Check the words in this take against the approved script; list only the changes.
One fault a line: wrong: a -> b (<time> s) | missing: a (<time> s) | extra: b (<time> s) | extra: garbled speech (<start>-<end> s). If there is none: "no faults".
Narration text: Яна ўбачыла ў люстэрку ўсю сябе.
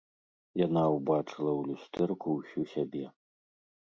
no faults